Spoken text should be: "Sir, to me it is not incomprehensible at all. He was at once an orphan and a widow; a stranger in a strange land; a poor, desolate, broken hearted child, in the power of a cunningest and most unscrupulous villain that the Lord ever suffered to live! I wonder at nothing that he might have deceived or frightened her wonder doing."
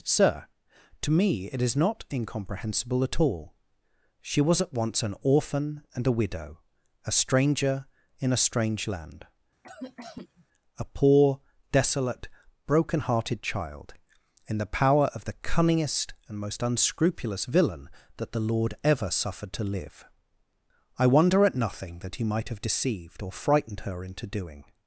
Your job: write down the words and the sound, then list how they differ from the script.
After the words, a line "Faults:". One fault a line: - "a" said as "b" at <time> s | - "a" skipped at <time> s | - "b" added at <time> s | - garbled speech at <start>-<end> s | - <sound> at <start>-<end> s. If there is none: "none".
"Sir, to me it is not incomprehensible at all. She was at once an orphan and a widow; a stranger in a strange land; a poor, desolate, broken hearted child, in the power of the cunningest and most unscrupulous villain that the Lord ever suffered to live! I wonder at nothing that he might have deceived or frightened her into doing."
Faults:
- "He" said as "She" at 4.2 s
- cough at 9.6-10.5 s
- "a" said as "the" at 15.2 s
- "wonder" said as "into" at 24.0 s